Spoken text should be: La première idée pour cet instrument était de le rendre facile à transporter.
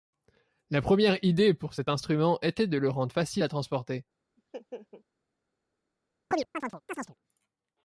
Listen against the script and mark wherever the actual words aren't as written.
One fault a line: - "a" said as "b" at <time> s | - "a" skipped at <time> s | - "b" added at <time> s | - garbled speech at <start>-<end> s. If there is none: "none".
none